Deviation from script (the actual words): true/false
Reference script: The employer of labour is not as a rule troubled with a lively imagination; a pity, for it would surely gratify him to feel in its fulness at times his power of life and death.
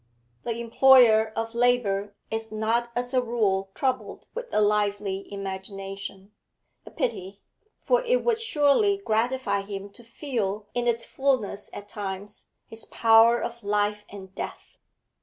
false